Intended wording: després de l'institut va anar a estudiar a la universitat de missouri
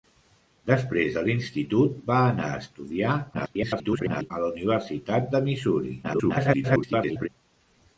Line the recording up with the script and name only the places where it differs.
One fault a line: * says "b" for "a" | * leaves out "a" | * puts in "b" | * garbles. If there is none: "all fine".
* garbles
* garbles